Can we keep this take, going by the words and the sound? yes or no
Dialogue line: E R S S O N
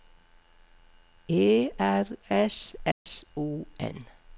no